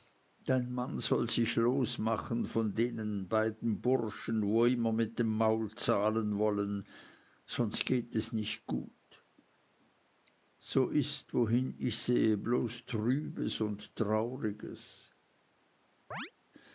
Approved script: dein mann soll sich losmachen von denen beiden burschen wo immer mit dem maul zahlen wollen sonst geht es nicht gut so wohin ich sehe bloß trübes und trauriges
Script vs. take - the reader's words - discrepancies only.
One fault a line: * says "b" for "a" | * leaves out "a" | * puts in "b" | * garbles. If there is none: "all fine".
* puts in "ist"